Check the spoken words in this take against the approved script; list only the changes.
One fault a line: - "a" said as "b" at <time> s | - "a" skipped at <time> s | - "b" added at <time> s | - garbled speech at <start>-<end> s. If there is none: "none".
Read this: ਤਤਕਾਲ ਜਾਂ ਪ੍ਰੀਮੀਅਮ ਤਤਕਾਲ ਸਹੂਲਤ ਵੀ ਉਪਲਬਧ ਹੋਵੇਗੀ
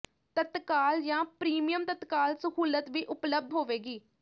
none